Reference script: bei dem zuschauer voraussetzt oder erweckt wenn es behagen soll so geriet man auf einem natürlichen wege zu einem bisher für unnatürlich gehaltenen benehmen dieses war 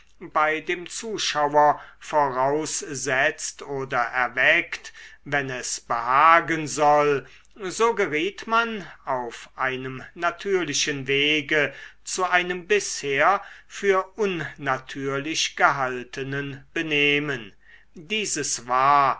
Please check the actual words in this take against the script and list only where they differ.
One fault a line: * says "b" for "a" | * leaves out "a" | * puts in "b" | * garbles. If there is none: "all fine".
all fine